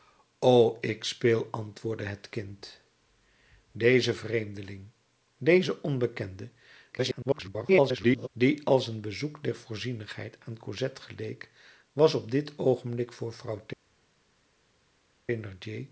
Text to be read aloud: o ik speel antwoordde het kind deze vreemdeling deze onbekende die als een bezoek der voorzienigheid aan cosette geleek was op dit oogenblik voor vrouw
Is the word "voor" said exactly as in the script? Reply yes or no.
yes